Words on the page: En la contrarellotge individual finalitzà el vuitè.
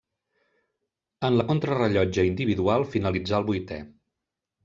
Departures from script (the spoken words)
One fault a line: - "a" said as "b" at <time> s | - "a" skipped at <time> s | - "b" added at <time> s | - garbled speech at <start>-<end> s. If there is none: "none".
none